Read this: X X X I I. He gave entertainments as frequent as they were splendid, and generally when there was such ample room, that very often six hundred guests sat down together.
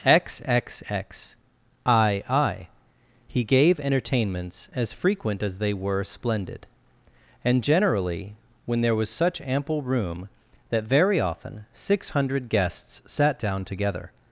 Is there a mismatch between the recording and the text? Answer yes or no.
no